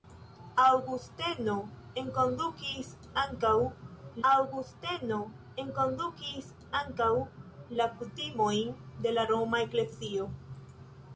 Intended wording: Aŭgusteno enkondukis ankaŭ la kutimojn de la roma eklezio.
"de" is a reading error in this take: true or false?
false